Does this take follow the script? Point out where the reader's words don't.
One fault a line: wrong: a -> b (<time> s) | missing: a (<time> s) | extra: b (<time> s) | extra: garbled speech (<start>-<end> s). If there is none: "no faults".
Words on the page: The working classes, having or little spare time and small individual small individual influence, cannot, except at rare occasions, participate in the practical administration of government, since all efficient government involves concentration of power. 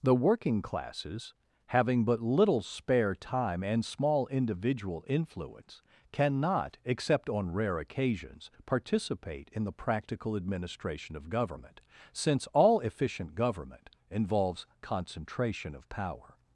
wrong: or -> but (2.0 s)
missing: small individual (5.0 s)
wrong: at -> on (7.3 s)